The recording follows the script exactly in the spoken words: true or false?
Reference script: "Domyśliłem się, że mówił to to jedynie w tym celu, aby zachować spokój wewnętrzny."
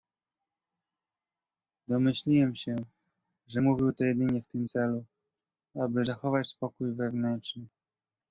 false